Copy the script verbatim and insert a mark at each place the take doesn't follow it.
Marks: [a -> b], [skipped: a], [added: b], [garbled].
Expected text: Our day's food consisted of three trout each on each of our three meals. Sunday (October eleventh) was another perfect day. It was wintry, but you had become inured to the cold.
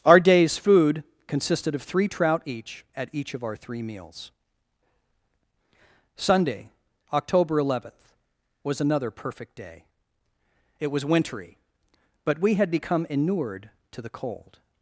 Our day's food consisted of three trout each [on -> at] each of our three meals. Sunday (October eleventh) was another perfect day. It was wintry, but [you -> we] had become inured to the cold.